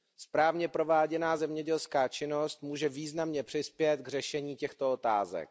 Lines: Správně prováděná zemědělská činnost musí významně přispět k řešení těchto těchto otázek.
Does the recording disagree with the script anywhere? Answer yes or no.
yes